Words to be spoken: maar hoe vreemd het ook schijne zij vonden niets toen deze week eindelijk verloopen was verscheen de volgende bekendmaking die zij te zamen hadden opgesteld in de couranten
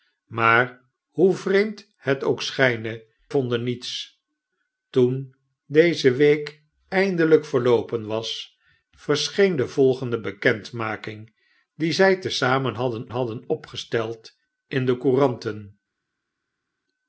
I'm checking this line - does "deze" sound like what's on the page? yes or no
yes